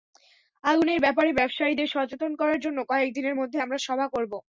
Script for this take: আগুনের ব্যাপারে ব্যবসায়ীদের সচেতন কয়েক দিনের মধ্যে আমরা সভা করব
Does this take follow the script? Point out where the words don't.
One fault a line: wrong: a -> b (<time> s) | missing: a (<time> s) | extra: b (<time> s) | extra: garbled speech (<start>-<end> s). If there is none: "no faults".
extra: করার জন্য (2.4 s)